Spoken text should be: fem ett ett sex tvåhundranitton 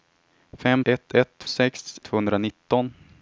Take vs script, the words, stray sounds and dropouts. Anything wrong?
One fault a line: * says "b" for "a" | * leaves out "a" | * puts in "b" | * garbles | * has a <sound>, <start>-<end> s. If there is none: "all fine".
all fine